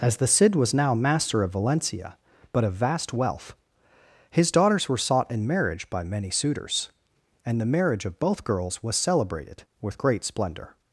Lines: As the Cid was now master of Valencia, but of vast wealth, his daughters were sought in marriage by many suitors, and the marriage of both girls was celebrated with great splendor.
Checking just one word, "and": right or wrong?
right